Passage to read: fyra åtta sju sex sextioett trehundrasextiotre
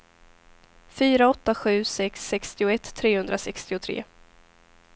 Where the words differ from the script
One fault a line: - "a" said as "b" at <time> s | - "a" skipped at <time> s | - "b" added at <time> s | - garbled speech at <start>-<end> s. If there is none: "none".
none